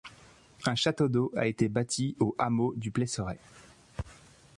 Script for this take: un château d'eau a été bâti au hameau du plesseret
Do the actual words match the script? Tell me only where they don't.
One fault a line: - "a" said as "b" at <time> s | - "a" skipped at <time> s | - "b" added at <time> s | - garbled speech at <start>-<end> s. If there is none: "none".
none